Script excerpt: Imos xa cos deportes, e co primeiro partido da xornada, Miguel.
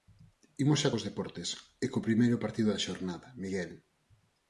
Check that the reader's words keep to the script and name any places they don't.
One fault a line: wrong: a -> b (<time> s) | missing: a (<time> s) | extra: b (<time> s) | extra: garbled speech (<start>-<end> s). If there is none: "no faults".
no faults